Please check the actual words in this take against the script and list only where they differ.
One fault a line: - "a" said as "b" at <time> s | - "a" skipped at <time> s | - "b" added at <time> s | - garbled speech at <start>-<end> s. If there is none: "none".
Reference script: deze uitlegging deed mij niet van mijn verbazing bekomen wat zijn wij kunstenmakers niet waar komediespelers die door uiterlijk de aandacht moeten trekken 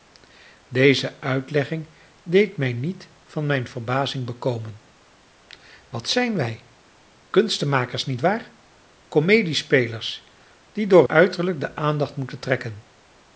none